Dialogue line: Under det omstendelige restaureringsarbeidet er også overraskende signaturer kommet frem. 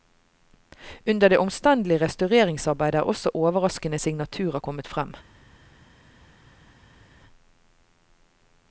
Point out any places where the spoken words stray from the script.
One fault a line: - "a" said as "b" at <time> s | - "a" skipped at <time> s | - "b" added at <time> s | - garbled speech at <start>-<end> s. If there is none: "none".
none